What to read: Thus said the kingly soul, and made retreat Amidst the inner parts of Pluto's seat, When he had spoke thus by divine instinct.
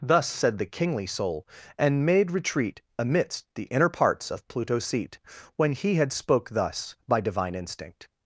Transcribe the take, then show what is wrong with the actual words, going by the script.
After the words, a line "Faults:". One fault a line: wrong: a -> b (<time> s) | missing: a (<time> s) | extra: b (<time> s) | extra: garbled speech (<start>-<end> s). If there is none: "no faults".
Thus said the kingly soul, and made retreat Amidst the inner parts of Pluto's seat, When he had spoke thus by divine instinct.
Faults:
no faults